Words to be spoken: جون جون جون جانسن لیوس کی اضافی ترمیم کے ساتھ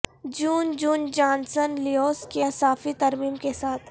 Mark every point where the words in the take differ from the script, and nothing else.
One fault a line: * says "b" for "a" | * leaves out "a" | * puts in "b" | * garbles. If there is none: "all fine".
* leaves out "جون"